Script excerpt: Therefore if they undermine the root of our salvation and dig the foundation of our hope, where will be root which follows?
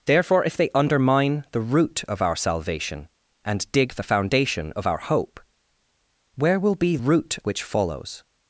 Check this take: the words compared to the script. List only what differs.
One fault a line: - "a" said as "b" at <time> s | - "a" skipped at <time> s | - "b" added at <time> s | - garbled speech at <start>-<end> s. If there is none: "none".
none